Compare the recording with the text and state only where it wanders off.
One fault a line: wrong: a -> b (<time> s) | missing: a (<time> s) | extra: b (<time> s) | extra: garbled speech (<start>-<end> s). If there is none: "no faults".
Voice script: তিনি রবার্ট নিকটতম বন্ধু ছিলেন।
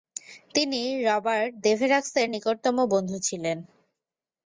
extra: দেভেরাক্সের (1.6 s)